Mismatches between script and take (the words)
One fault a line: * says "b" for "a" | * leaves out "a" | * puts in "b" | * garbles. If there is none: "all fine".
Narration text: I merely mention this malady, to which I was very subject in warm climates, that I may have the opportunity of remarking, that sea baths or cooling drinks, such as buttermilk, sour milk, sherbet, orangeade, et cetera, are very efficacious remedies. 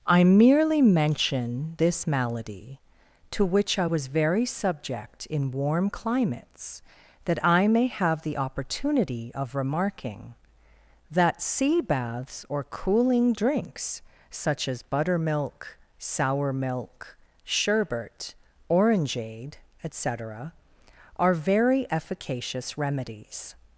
all fine